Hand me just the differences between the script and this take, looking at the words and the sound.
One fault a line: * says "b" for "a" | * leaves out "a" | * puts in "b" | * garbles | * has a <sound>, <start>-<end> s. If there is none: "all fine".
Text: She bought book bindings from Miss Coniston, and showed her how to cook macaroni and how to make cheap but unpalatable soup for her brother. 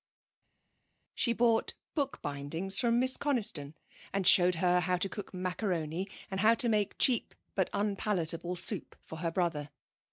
all fine